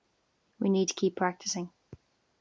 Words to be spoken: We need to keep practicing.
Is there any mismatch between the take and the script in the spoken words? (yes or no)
no